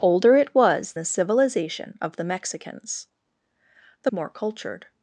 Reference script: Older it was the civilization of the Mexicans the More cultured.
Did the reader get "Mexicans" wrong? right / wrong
right